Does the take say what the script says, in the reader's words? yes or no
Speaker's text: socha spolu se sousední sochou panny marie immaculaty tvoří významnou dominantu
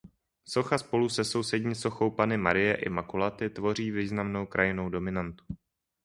no